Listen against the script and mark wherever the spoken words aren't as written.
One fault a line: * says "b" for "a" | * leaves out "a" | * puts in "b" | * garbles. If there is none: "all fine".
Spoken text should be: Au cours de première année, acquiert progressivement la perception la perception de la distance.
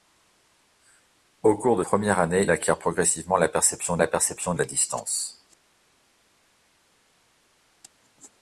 all fine